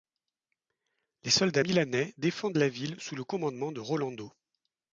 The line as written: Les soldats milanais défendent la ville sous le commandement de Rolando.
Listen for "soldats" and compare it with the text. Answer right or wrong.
right